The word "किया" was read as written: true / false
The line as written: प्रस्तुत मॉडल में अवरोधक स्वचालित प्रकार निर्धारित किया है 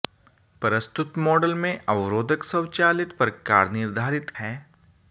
false